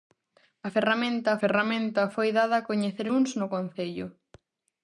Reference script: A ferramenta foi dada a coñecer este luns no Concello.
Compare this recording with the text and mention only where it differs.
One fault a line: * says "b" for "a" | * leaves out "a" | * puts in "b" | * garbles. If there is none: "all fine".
* puts in "ferramenta"
* leaves out "este"